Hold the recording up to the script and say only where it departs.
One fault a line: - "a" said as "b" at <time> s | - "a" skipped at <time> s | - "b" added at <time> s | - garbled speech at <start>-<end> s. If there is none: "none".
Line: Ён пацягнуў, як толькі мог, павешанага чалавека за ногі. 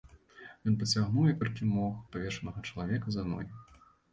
none